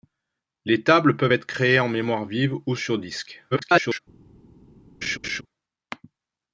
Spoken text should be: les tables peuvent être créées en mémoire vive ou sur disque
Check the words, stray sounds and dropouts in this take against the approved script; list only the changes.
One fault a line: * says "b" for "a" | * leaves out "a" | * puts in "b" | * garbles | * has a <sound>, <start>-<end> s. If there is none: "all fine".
* garbles
* has a laugh, 5.0-5.4 s